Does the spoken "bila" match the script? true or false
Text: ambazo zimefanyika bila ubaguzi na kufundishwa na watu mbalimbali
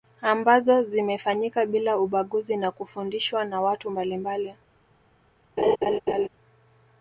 true